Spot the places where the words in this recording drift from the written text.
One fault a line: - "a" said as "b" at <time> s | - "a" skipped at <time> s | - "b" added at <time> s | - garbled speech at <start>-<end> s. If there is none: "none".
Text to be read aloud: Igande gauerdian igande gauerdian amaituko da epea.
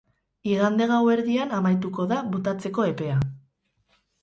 - "igande gauerdian" skipped at 1.5 s
- "botatzeko" added at 2.3 s